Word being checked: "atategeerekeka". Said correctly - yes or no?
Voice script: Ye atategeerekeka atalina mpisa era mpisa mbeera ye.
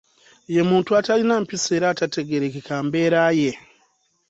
no